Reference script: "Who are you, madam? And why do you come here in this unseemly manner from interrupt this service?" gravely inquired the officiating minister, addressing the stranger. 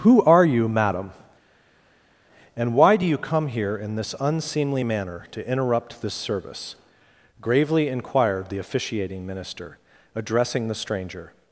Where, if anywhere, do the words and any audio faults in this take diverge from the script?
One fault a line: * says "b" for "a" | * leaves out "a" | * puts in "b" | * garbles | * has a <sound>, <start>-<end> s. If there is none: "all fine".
* says "to" for "from"